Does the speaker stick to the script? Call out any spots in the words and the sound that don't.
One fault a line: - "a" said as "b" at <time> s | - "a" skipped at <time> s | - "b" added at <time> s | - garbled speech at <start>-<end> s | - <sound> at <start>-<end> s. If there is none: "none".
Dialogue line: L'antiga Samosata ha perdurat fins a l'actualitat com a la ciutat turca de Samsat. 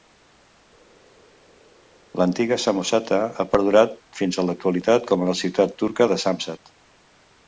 none